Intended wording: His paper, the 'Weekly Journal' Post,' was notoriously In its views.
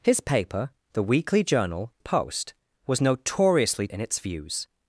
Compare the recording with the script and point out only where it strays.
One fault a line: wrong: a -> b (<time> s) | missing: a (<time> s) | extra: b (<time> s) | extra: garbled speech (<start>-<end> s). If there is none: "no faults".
no faults